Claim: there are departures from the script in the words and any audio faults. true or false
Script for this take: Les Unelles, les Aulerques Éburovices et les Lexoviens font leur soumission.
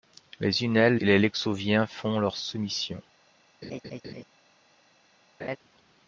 true